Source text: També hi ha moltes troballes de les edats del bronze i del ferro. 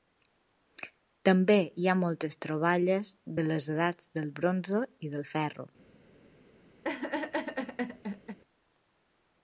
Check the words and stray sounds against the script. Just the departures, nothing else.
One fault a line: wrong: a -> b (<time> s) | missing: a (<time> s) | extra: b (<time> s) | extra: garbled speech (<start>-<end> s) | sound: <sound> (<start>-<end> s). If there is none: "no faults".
sound: laugh (6.8-8.4 s)